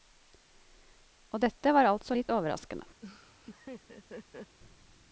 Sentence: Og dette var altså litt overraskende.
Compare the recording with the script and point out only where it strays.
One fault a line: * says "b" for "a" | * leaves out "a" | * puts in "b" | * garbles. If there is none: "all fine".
all fine